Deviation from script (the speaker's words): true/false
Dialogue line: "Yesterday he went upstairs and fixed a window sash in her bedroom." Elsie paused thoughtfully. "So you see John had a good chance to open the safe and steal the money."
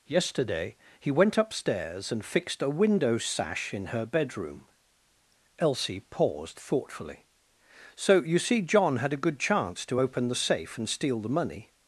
false